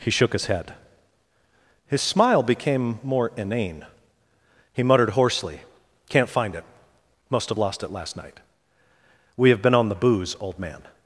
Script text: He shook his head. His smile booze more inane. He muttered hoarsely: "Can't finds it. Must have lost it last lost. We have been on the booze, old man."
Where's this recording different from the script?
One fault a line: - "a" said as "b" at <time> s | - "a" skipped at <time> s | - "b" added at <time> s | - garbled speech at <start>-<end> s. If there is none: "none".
- "booze" said as "became" at 2.4 s
- "finds" said as "find" at 6.3 s
- "lost" said as "night" at 8.1 s